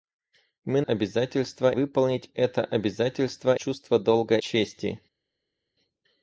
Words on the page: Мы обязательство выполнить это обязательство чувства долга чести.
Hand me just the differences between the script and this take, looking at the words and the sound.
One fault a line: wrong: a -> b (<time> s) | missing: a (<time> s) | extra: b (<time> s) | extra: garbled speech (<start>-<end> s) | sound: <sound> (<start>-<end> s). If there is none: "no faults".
no faults